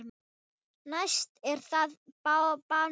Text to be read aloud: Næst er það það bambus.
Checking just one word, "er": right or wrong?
right